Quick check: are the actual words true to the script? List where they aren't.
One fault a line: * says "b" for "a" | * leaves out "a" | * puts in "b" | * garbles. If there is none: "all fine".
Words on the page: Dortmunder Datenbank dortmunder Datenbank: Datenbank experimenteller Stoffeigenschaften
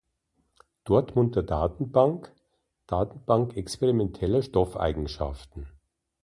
* leaves out "dortmunder Datenbank"